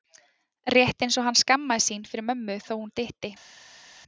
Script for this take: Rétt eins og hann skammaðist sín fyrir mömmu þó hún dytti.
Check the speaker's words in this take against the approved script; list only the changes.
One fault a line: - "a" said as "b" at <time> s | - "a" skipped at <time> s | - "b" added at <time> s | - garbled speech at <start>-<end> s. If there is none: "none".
none